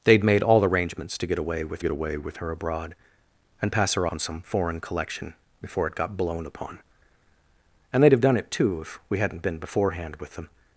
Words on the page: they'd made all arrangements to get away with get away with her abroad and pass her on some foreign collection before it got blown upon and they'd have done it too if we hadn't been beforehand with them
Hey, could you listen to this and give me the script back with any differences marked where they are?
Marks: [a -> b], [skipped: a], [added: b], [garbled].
they'd made all arrangements to get away with get away with her abroad and pass her on some foreign collection before it got blown upon and they'd have done it too if we hadn't been beforehand with them